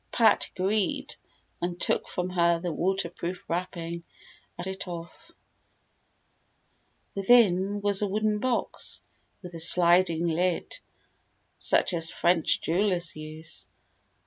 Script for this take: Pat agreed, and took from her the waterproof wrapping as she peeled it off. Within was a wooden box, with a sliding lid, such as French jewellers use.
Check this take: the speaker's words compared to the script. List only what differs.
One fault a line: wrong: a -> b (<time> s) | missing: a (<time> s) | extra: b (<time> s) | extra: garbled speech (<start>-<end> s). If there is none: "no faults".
missing: she peeled (4.7 s)